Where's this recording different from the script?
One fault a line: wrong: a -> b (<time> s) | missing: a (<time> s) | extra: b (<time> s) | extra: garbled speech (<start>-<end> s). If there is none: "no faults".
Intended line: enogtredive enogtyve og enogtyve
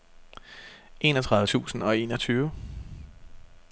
wrong: enogtyve -> tusind (1.4 s)